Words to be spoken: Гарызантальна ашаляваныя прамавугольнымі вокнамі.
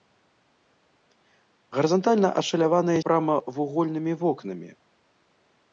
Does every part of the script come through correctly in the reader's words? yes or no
yes